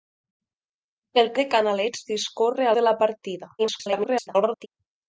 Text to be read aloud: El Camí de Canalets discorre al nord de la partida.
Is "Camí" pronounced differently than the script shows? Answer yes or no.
yes